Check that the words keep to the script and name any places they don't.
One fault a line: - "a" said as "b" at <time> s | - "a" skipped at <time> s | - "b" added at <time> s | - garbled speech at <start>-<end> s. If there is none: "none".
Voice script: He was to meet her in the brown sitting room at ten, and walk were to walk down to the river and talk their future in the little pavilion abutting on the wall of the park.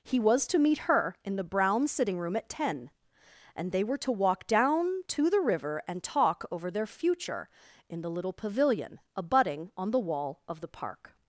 - "walk" said as "they" at 3.7 s
- "over" added at 6.5 s